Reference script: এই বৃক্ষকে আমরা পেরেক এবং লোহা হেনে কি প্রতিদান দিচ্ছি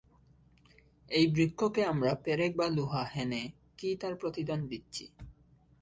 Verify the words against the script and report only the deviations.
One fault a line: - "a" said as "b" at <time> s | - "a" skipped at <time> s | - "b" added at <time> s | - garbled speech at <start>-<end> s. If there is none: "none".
- "এবং" said as "বা" at 2.5 s
- "তার" added at 4.0 s